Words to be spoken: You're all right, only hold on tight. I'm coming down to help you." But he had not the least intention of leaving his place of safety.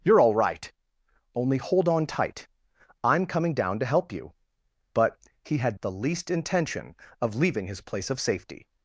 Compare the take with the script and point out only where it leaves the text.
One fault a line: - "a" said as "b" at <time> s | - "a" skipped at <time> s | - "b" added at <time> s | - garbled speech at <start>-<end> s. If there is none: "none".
- "not" skipped at 5.8 s